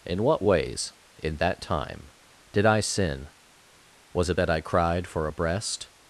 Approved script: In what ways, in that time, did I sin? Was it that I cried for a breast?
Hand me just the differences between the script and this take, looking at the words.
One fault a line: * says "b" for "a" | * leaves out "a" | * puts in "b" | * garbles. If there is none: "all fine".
all fine